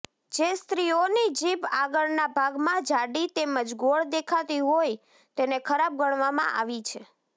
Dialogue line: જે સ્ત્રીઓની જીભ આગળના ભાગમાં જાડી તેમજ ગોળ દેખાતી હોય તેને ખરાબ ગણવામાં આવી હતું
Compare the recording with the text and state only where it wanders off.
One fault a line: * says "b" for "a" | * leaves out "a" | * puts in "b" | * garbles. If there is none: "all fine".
* says "છે" for "હતું"